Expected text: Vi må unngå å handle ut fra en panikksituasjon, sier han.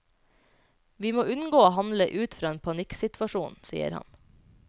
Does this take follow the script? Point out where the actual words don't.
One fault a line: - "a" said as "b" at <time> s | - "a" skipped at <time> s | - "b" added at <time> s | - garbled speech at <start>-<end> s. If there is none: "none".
none